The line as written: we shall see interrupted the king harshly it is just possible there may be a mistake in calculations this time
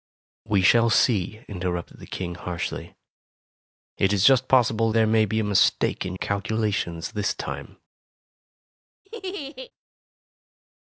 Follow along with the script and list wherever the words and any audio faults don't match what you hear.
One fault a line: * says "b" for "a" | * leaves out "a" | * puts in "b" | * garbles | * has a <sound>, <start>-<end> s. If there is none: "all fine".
* has a laugh, 9.0-9.7 s